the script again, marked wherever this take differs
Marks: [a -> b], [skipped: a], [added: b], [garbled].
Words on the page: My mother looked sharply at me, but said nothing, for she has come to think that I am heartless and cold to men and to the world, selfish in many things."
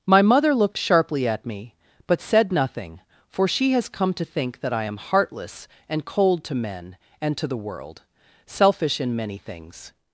My mother looked sharply at me, but said nothing, for she has come to think that I am heartless and cold to men and to the world, selfish in many things."